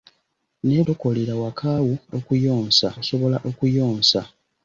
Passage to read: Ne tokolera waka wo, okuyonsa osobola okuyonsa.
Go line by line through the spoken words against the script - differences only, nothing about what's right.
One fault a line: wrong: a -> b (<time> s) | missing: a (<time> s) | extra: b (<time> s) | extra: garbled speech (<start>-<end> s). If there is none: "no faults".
no faults